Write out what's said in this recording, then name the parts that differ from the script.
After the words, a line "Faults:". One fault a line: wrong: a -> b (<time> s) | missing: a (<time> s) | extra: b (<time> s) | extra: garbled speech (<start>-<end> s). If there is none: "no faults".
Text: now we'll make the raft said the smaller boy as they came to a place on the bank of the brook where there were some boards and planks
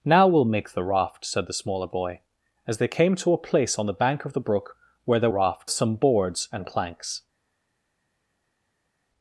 now we'll make the raft said the smaller boy as they came to a place on the bank of the brook where there raft some boards and planks
Faults:
wrong: were -> raft (5.3 s)